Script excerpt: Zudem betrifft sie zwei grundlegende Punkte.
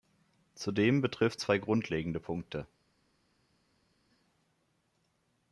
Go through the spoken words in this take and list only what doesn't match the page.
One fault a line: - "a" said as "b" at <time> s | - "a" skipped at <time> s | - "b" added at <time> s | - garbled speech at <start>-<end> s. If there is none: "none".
- "sie" skipped at 1.4 s